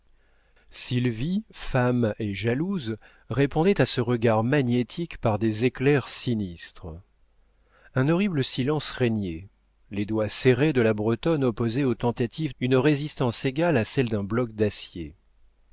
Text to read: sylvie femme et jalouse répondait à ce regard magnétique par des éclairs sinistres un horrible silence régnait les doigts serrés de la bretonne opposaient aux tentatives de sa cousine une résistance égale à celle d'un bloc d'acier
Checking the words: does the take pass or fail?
fail